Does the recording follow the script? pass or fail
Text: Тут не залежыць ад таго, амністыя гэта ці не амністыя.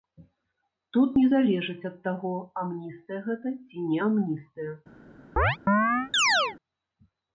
pass